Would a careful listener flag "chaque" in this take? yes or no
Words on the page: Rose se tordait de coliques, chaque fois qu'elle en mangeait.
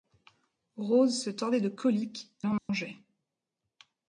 yes